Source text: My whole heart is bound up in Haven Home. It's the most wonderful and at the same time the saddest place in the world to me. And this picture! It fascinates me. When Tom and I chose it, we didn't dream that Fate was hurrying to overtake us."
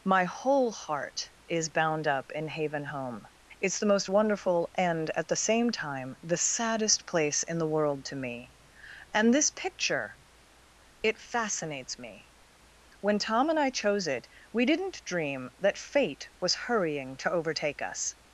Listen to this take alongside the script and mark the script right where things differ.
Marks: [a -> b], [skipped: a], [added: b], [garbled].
My whole heart is bound up in Haven Home. It's the most wonderful and at the same time the saddest place in the world to me. And this picture! It fascinates me. When Tom and I chose it, we didn't dream that Fate was hurrying to overtake us."